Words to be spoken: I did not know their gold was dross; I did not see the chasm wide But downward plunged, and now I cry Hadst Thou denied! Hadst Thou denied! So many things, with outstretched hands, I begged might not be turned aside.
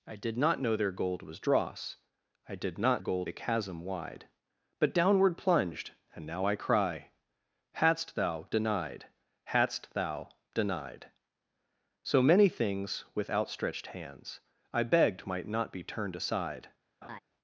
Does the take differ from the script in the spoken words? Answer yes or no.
yes